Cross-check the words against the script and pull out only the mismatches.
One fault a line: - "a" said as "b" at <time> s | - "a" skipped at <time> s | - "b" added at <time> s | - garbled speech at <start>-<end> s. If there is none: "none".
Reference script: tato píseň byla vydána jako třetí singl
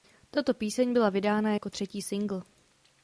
none